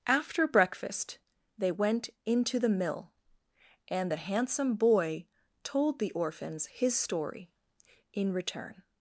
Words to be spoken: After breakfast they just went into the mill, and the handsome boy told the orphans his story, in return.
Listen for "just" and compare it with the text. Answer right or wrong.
wrong